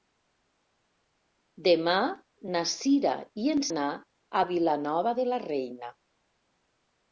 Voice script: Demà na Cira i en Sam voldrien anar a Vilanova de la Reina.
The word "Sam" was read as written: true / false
false